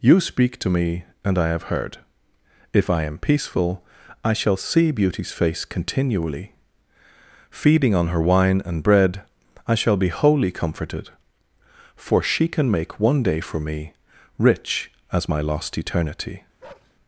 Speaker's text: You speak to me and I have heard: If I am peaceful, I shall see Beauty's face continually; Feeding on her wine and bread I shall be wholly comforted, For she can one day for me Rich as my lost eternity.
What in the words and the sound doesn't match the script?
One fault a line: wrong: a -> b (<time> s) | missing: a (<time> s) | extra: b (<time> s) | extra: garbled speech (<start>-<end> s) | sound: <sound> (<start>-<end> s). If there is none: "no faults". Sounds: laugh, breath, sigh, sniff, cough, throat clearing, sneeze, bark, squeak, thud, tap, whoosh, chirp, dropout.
extra: make (12.7 s)
sound: bark (16.6-16.9 s)